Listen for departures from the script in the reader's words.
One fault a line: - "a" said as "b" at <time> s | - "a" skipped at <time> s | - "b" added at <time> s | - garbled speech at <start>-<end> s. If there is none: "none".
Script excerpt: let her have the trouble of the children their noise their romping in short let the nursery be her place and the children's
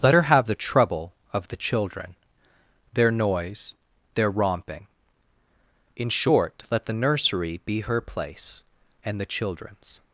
none